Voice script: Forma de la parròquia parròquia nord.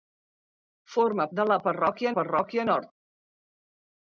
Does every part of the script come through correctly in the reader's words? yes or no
yes